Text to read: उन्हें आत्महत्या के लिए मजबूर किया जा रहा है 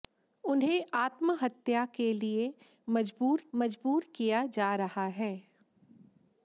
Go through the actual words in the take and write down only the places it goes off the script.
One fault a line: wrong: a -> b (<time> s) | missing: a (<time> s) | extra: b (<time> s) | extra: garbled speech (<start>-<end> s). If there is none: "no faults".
extra: मजबूर (3.5 s)